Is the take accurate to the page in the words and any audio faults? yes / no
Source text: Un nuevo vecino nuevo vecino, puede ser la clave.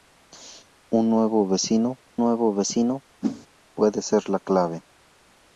no